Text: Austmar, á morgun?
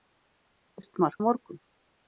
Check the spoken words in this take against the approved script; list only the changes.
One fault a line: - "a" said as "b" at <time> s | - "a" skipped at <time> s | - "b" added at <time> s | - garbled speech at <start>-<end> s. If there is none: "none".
none